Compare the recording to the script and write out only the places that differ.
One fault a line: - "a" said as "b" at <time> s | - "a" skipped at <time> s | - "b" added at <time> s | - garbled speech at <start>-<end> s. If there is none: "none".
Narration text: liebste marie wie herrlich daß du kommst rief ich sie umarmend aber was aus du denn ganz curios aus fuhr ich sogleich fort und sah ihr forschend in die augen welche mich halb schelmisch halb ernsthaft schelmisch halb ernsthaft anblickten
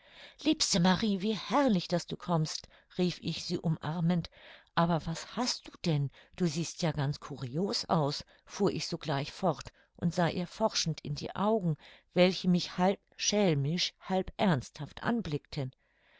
- "aus" said as "hast" at 5.3 s
- "du siehst ja" added at 6.4 s
- "schelmisch halb ernsthaft" skipped at 15.0 s